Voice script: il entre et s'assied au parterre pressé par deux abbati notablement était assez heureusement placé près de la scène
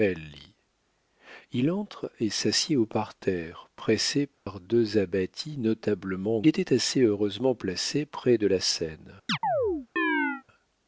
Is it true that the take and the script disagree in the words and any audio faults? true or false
true